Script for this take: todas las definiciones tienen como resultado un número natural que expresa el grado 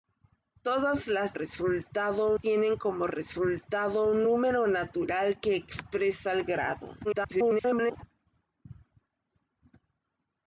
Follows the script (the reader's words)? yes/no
no